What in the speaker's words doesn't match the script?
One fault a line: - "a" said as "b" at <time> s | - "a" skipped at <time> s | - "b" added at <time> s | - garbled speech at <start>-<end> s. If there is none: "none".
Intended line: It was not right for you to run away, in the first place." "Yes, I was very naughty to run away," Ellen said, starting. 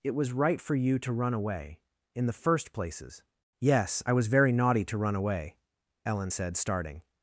- "not" skipped at 0.3 s
- "place" said as "places" at 2.7 s